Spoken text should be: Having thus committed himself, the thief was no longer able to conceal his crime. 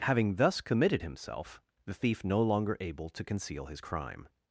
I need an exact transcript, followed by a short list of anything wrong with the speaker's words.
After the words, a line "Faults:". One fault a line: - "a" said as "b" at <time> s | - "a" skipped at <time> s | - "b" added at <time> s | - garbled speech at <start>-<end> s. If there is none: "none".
Having thus committed himself, the thief no longer able to conceal his crime.
Faults:
- "was" skipped at 2.2 s